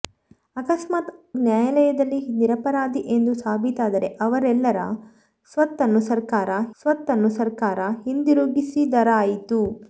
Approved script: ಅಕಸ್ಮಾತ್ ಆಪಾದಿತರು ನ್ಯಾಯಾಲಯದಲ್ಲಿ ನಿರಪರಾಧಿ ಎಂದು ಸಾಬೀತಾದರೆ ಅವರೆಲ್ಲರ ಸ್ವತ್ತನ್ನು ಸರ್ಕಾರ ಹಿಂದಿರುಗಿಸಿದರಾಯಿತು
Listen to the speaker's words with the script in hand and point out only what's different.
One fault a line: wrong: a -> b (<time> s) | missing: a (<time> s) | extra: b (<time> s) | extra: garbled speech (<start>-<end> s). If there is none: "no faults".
missing: ಆಪಾದಿತರು (1.1 s)
extra: ಸ್ವತ್ತನ್ನು ಸರ್ಕಾರ (6.8 s)